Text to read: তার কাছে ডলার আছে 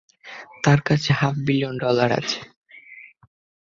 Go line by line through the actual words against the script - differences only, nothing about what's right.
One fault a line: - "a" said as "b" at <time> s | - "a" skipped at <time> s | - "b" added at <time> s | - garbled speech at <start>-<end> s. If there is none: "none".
- "হাফ বিলিয়ন" added at 1.1 s